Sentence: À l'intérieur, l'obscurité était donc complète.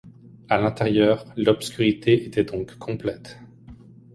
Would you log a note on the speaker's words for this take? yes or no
no